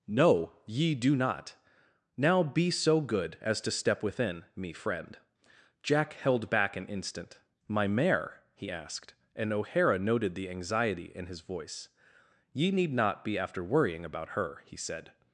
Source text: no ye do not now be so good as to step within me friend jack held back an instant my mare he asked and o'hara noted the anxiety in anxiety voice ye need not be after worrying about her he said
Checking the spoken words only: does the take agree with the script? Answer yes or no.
no